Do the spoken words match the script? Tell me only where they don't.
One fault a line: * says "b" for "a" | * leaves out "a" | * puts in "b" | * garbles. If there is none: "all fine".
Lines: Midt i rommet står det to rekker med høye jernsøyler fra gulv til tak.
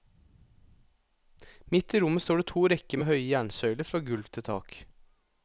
all fine